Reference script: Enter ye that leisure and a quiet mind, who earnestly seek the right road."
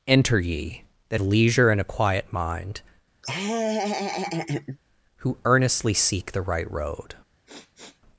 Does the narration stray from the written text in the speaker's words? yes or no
no